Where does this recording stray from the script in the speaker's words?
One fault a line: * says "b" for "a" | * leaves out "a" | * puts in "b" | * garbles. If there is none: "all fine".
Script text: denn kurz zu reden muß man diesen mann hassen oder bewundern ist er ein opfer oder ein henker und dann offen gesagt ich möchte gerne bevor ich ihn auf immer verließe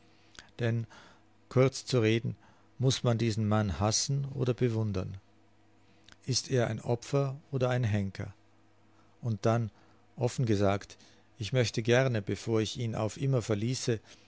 all fine